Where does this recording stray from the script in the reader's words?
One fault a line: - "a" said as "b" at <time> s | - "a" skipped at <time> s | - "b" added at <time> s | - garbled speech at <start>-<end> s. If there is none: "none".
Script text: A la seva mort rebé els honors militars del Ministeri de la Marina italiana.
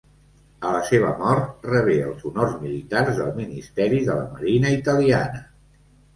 none